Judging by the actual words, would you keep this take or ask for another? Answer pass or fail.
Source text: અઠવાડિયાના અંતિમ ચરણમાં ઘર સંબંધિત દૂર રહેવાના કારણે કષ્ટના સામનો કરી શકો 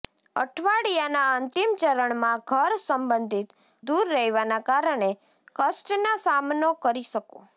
pass